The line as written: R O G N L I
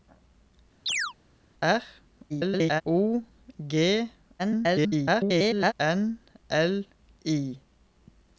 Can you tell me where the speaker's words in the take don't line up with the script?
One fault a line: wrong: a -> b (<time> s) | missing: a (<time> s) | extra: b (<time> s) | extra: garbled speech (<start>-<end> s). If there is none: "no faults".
extra: garbled speech (2.3-2.8 s)
extra: garbled speech (4.4-5.7 s)